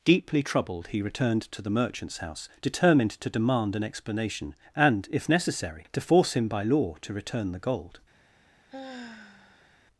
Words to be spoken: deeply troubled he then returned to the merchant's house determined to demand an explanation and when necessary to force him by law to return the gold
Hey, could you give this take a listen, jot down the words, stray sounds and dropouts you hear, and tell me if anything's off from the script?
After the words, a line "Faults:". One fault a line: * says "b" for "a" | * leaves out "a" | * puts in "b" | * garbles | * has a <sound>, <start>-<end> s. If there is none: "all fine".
deeply troubled he returned to the merchant's house determined to demand an explanation and if necessary to force him by law to return the gold
Faults:
* leaves out "then"
* says "if" for "when"
* has a sigh, 8.7-9.8 s